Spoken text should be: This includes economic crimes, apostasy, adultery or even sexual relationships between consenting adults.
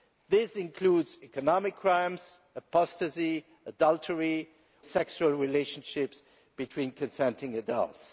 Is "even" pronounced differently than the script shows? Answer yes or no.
yes